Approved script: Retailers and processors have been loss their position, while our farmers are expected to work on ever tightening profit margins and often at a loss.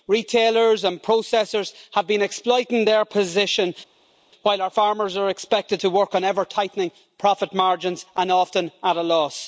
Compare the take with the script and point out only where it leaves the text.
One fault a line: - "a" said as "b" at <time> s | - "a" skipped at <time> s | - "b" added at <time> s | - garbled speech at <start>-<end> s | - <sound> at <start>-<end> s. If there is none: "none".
- "loss" said as "exploiting" at 2.2 s